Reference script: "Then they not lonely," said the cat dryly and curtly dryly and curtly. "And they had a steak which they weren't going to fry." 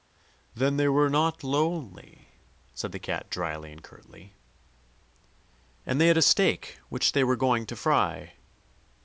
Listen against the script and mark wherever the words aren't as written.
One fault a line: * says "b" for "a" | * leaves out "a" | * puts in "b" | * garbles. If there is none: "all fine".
* puts in "were"
* leaves out "dryly"
* leaves out "curtly And"
* says "were" for "weren't"